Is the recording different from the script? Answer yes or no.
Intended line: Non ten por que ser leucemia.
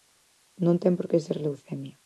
no